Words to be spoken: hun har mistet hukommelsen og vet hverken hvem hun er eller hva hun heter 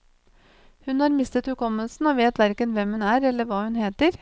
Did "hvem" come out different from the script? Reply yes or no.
no